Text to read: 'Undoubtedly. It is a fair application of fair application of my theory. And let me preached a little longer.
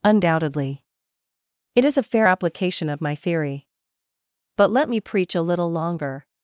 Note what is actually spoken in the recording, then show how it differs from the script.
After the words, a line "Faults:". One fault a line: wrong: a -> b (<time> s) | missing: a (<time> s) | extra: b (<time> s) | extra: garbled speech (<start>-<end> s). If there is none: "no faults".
'Undoubtedly. It is a fair application of my theory. But let me preach a little longer.
Faults:
missing: fair application of (3.0 s)
wrong: And -> But (4.6 s)
wrong: preached -> preach (5.0 s)